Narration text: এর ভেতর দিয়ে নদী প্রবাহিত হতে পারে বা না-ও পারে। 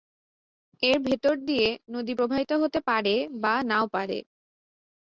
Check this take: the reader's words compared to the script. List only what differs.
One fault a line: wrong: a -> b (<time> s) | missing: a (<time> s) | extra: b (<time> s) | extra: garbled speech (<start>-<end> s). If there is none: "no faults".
no faults